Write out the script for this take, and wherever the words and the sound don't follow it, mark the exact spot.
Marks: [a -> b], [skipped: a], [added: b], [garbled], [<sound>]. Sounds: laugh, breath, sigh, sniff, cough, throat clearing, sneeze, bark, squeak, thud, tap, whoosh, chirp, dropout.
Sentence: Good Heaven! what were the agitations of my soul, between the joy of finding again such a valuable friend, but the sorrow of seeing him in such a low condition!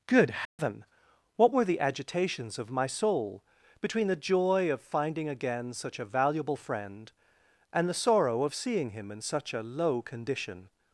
Good Heaven! [dropout] what were the agitations of my soul, between the joy of finding again such a valuable friend, [but -> and] the sorrow of seeing him in such a low condition!